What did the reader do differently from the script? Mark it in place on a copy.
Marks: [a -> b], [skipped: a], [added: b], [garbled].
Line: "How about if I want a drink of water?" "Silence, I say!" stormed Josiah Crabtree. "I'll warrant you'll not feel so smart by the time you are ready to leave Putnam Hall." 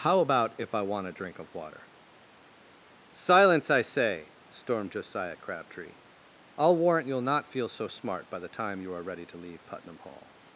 "How about if I want a drink of water?" "Silence, I say!" stormed Josiah Crabtree. "I'll warrant you'll not feel so smart by the time you are ready to leave Putnam Hall."